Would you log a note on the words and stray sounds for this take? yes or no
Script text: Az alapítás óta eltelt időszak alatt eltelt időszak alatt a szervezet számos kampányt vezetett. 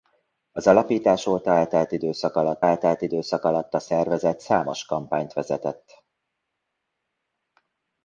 no